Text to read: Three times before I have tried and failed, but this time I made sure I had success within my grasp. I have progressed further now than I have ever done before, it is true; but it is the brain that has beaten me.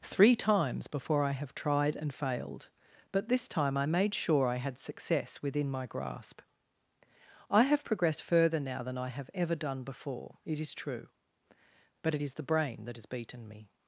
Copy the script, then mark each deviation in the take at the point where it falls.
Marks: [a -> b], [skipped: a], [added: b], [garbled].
Three times before I have tried and failed, but this time I made sure I had success within my grasp. I have progressed further now than I have ever done before, it is true; but it is the brain that has beaten me.